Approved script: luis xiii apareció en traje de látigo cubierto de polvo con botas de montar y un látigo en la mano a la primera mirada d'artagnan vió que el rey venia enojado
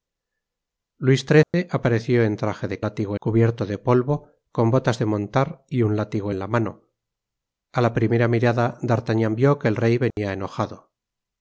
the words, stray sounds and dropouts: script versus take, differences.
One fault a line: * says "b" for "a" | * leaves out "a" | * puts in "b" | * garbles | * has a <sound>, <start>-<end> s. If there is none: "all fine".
* has a dropout, 1.4-1.5 s
* has a dropout, 10.1-10.2 s